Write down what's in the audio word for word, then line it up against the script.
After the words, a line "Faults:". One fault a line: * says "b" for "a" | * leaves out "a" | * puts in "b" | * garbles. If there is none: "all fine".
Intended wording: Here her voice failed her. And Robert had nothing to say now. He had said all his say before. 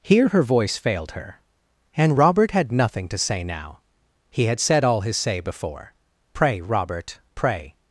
Here her voice failed her. And Robert had nothing to say now. He had said all his say before. 'Pray, Robert, pray
Faults:
* puts in "Pray Robert pray"